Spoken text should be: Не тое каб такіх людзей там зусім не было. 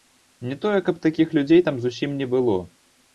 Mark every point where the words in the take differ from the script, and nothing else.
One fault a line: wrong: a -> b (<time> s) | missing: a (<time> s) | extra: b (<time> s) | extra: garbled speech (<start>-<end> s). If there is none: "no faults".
no faults